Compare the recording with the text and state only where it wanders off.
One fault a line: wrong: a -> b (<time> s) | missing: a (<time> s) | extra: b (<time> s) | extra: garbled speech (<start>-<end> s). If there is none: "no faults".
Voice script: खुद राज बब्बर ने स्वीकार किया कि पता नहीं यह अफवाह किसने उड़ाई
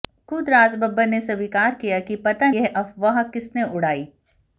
missing: नहीं (2.5 s)